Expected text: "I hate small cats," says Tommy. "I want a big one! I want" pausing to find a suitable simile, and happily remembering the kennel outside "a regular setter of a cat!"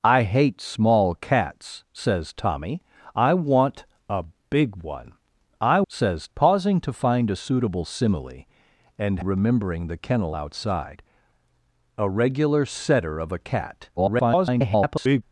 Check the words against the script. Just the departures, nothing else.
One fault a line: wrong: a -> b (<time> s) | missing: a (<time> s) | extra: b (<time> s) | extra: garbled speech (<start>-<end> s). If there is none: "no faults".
wrong: want -> says (5.9 s)
missing: happily (9.2 s)
extra: garbled speech (14.0-15.2 s)